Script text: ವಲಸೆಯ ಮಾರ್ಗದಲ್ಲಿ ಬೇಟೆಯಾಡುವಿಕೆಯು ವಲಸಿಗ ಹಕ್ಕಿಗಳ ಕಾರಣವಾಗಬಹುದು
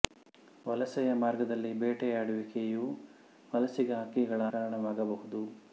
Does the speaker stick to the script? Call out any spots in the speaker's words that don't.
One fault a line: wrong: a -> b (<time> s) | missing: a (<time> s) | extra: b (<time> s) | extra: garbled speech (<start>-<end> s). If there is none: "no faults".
no faults